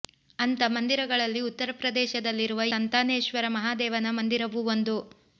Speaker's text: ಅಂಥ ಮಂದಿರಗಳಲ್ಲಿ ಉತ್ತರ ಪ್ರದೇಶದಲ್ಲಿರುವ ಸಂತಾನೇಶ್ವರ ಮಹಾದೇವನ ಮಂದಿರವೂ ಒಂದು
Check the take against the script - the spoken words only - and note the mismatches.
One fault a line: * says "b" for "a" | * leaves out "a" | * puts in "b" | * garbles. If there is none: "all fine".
all fine